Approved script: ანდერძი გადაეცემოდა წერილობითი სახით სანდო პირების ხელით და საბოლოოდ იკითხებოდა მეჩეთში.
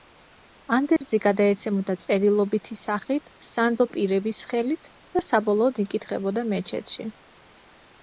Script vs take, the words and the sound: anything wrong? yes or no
yes